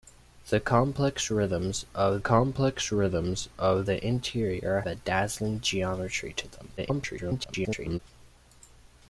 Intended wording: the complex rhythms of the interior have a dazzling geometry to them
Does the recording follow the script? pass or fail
fail